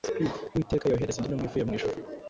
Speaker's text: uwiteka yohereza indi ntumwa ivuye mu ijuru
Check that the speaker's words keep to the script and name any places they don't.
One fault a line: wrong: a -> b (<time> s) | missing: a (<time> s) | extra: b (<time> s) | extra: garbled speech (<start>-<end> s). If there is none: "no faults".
no faults